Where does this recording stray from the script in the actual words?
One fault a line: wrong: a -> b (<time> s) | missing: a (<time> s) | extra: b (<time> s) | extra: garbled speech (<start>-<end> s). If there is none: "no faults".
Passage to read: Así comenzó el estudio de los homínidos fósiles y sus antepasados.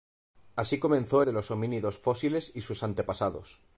missing: el estudio (1.2 s)